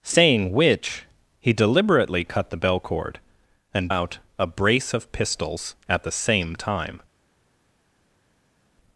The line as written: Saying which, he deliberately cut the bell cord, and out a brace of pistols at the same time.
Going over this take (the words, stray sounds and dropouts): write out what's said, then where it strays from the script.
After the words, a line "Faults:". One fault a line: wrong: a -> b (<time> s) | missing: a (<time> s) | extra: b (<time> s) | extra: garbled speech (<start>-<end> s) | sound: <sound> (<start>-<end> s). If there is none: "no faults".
Saying which, he deliberately cut the bell cord, and out a brace of pistols at the same time.
Faults:
no faults